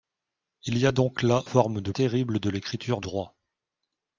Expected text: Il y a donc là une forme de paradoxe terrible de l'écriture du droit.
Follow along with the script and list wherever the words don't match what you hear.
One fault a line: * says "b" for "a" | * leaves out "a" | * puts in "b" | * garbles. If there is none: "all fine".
* leaves out "une"
* leaves out "paradoxe"
* leaves out "du"